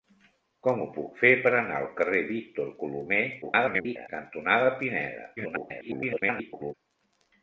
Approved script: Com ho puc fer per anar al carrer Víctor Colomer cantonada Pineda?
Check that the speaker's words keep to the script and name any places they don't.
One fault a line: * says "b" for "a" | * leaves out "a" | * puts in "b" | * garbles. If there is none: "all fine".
* garbles
* garbles